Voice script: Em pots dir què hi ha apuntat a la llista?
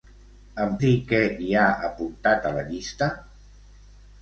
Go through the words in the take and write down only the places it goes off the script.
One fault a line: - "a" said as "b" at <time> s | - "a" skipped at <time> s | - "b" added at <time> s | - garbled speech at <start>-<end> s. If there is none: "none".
- "pots" skipped at 0.7 s